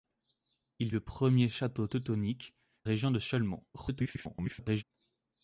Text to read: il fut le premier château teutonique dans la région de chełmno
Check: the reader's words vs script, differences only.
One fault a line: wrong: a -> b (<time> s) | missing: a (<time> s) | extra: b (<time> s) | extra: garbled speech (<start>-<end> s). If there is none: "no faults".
missing: fut (0.9 s)
missing: dans la (2.5 s)
extra: garbled speech (3.7-4.8 s)